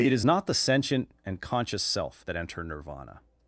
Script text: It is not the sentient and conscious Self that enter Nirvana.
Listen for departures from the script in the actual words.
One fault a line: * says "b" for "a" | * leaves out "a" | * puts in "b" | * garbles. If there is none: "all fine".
all fine